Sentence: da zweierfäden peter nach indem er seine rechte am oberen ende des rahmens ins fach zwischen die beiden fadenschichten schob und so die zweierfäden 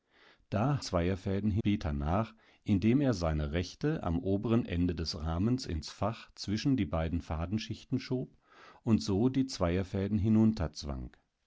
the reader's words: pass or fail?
pass